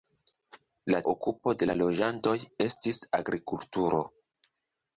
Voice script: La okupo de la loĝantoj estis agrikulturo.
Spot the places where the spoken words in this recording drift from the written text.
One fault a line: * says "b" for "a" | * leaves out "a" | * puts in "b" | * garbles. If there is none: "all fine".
all fine